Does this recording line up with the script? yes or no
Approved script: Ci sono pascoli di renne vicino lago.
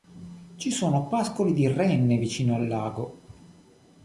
no